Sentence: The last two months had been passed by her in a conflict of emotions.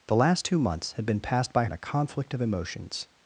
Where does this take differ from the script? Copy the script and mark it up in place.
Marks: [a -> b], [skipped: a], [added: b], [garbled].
The last two months had been passed by [skipped: her] in a conflict of emotions.